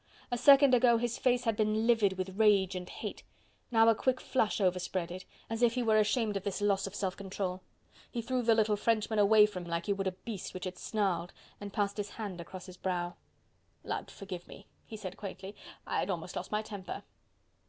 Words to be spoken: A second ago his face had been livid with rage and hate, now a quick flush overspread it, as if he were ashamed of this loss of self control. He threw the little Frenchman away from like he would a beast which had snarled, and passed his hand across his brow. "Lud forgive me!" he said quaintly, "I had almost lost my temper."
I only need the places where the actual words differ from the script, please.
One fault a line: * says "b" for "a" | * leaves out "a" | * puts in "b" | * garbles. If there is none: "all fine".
all fine